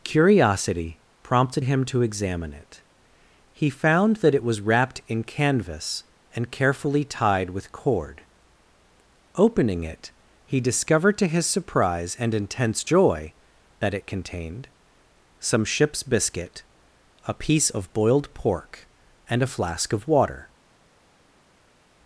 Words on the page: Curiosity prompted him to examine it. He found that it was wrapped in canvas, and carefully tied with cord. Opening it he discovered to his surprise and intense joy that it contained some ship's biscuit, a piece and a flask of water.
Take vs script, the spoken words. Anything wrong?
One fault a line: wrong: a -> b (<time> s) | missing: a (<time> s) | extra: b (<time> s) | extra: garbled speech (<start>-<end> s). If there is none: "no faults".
extra: of boiled pork (17.7 s)